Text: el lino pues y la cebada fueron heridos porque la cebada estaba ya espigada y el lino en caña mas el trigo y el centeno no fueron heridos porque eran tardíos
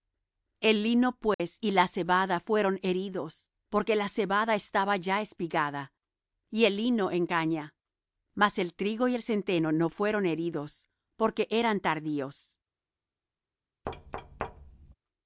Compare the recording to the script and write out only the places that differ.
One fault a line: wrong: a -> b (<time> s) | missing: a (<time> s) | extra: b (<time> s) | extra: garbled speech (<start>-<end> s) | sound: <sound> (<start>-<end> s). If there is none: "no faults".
sound: dropout (1.3-1.4 s)
sound: thud (13.8-14.9 s)